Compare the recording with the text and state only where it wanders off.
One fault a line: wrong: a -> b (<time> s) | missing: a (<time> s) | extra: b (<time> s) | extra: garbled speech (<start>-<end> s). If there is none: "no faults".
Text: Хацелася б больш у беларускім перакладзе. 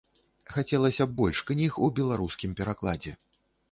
extra: кніг (1.5 s)